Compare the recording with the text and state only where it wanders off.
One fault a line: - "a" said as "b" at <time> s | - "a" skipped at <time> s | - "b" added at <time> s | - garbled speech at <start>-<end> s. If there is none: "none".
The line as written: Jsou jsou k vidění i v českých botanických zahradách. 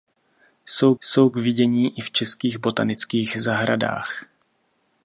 none